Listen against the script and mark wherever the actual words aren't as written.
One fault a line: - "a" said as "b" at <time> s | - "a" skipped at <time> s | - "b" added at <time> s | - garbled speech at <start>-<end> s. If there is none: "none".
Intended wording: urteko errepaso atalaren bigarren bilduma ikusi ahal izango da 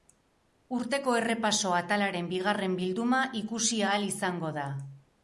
none